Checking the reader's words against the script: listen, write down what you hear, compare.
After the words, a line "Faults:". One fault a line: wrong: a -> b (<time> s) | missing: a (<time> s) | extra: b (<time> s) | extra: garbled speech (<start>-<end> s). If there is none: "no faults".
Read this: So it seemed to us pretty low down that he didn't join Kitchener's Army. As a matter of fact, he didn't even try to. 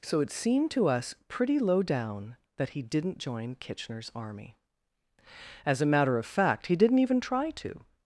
So it seemed to us pretty low down that he didn't join Kitchener's Army. As a matter of fact, he didn't even try to.
Faults:
no faults